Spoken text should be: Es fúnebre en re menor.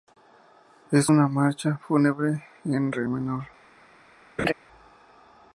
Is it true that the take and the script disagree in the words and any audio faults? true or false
true